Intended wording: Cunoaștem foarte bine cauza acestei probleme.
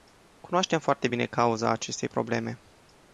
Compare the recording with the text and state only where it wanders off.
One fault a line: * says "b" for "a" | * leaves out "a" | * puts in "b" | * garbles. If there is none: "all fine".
all fine